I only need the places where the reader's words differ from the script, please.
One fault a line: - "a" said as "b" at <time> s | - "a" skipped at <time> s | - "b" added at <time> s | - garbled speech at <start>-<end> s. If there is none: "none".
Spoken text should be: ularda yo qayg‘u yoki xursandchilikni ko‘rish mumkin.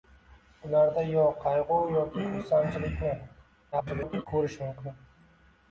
- garbled speech at 3.7-4.3 s